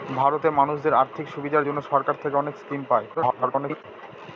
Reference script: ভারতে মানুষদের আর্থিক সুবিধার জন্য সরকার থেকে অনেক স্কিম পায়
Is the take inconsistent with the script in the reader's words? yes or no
yes